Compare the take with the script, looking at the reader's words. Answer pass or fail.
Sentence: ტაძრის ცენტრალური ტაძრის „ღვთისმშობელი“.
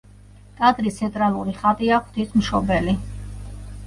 fail